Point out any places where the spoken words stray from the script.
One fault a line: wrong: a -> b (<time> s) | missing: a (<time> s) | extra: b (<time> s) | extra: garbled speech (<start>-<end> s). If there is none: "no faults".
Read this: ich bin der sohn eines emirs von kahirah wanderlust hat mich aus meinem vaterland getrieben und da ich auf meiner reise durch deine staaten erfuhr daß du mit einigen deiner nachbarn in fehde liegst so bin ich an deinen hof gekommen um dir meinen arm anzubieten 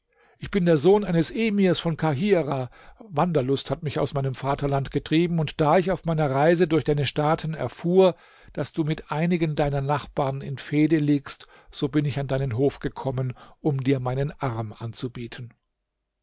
no faults